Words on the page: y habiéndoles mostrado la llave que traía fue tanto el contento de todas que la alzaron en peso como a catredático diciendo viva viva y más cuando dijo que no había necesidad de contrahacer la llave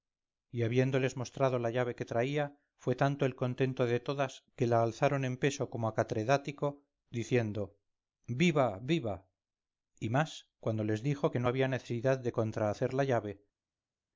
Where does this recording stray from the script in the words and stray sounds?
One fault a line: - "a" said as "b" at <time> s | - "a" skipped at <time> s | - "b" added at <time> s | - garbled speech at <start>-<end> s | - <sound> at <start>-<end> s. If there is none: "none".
- "les" added at 10.8 s